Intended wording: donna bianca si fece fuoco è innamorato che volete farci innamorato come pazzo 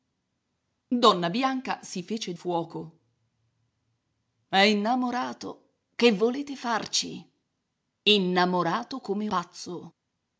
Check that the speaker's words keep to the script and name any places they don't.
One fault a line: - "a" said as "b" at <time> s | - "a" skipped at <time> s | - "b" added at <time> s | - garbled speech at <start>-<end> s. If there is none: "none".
none